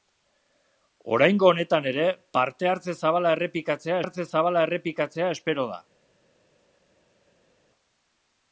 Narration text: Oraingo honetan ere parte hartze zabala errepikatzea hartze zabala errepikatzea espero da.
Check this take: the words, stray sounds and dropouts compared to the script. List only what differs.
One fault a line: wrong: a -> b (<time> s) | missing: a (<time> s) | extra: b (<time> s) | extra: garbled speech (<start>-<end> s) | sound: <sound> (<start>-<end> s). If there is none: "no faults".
no faults